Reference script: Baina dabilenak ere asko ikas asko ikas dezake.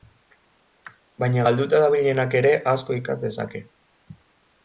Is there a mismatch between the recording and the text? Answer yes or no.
yes